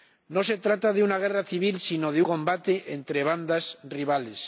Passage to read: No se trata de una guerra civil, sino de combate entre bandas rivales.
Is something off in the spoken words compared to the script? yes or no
no